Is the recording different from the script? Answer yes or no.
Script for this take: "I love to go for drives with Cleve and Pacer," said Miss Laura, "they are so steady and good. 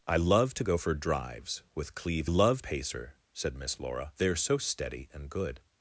yes